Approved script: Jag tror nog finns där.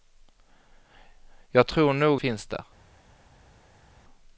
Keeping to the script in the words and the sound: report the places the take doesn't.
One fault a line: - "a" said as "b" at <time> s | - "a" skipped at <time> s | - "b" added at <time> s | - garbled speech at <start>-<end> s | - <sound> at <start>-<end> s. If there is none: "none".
none